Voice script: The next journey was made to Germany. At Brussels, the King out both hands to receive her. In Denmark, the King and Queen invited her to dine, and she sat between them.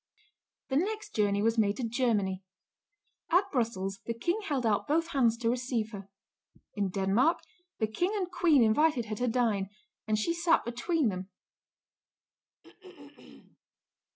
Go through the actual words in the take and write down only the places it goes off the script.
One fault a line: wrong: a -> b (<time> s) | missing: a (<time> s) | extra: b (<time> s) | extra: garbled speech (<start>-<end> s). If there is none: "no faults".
extra: held (4.4 s)